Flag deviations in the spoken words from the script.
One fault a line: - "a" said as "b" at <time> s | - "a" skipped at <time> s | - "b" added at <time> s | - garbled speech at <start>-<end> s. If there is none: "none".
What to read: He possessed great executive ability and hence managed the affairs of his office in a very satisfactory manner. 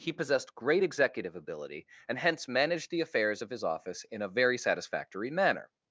none